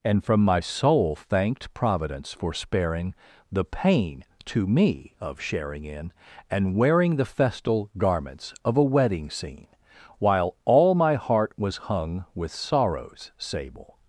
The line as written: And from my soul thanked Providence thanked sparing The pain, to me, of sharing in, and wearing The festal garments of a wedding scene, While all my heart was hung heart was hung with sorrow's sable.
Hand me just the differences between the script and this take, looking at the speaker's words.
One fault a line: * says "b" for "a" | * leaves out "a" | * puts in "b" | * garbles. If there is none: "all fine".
* says "for" for "thanked"
* leaves out "heart was hung"